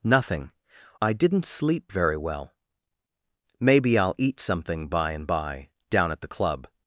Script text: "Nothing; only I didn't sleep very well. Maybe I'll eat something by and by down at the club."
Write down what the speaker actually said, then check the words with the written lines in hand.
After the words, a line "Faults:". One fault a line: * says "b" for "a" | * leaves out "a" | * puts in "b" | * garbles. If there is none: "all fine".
"Nothing; I didn't sleep very well. Maybe I'll eat something by and by down at the club."
Faults:
* leaves out "only"